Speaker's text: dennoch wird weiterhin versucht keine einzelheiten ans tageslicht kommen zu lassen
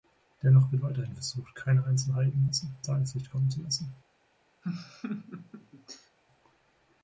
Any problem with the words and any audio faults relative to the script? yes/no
yes